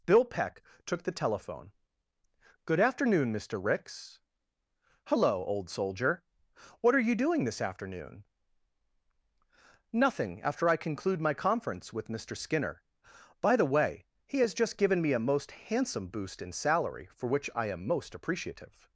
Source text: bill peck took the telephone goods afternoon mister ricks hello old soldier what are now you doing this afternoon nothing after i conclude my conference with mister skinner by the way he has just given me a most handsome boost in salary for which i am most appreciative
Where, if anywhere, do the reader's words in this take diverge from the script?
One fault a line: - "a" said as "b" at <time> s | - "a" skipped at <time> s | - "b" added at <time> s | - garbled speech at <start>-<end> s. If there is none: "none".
- "goods" said as "good" at 2.6 s
- "now" skipped at 7.1 s